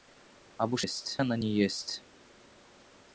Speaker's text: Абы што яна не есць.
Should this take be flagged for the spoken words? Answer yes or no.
yes